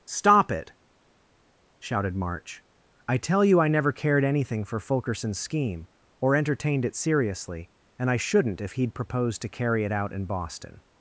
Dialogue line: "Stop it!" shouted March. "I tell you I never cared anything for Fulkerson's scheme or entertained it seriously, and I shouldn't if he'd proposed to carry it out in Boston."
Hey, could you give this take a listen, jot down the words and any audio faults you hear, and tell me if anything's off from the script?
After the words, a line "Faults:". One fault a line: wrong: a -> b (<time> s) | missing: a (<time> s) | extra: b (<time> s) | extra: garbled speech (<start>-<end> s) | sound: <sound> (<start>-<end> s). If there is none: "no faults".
"Stop it!" shouted March. "I tell you I never cared anything for Fulkerson's scheme or entertained it seriously, and I shouldn't if he'd proposed to carry it out in Boston."
Faults:
no faults